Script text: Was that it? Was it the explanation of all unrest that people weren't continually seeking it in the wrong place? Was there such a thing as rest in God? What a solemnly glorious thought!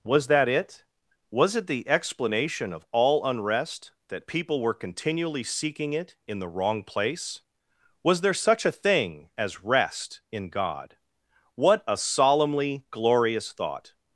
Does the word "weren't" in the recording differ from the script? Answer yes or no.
yes